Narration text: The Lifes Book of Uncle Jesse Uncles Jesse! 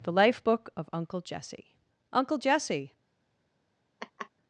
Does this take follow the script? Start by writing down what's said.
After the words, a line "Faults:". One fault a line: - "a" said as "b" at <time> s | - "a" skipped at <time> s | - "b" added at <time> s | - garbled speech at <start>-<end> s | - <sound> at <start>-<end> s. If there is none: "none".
The Life Book of Uncle Jesse Uncle Jesse!
Faults:
- "Lifes" said as "Life" at 0.1 s
- "Uncles" said as "Uncle" at 2.1 s
- laugh at 4.0-4.3 s